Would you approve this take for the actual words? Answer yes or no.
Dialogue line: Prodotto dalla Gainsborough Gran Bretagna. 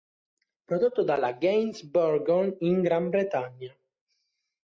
no